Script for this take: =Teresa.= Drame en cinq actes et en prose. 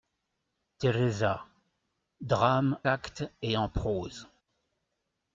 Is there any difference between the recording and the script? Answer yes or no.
yes